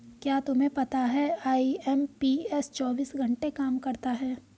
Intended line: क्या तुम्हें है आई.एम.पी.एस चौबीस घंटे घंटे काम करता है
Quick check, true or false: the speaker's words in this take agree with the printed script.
false